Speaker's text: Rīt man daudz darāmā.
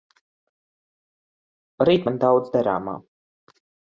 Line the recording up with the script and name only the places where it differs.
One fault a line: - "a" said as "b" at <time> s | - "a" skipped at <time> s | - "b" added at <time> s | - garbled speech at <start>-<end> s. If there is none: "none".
none